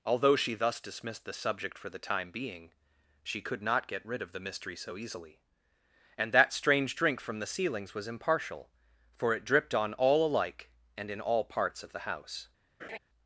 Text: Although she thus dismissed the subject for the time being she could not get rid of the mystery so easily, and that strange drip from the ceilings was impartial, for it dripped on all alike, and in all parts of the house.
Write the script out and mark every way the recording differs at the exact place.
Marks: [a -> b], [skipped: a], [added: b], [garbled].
Although she thus dismissed the subject for the time being she could not get rid of the mystery so easily, and that strange [drip -> drink] from the ceilings was impartial, for it dripped on all alike, and in all parts of the house.